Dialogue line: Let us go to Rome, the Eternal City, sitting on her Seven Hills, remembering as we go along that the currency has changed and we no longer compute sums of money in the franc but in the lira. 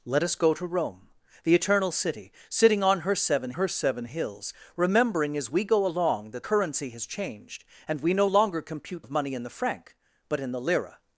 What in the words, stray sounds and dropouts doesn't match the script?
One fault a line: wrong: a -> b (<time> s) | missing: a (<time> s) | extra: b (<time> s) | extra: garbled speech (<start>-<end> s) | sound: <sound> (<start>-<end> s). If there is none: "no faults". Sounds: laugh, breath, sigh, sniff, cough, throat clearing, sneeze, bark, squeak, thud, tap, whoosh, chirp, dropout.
extra: her Seven (3.5 s)
missing: the (6.4 s)
missing: sums (9.1 s)